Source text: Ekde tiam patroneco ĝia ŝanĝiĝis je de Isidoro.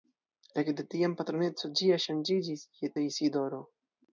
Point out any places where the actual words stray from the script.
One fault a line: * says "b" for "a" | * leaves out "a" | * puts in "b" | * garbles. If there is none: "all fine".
all fine